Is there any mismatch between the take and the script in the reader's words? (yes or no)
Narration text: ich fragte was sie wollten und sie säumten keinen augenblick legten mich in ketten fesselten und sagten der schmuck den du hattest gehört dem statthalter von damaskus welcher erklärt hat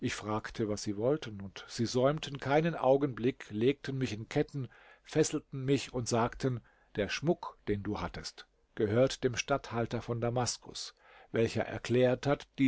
yes